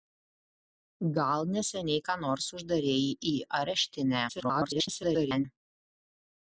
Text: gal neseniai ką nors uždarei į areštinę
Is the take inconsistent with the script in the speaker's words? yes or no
yes